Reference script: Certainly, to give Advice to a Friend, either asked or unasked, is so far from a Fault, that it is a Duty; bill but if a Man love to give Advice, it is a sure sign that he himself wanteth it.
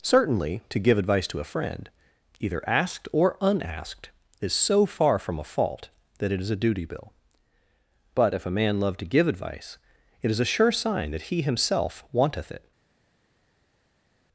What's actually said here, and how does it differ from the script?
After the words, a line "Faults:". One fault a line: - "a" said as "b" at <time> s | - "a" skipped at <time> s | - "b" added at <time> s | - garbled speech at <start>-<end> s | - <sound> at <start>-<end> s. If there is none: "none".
Certainly, to give Advice to a Friend, either asked or unasked, is so far from a Fault, that it is a Duty; bill but if a Man love to give Advice, it is a sure sign that he himself wanteth it.
Faults:
none